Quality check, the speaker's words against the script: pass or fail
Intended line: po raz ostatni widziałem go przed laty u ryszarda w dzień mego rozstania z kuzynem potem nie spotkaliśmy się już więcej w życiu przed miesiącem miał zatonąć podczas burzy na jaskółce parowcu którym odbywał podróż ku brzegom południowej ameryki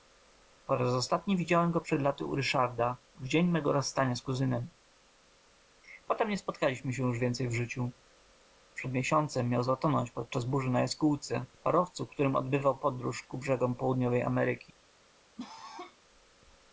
pass